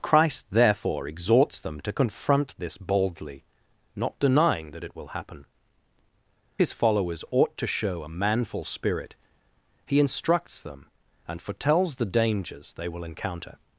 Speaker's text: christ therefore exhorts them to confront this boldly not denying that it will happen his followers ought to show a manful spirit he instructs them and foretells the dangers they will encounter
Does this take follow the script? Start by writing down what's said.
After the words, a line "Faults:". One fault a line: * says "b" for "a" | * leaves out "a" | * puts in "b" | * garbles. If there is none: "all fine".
christ therefore exhorts them to confront this boldly not denying that it will happen his followers ought to show a manful spirit he instructs them and foretells the dangers they will encounter
Faults:
all fine